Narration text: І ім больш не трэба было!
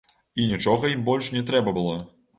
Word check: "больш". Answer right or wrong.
right